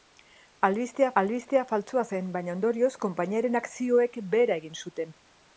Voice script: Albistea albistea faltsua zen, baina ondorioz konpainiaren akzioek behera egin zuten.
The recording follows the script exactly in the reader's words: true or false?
true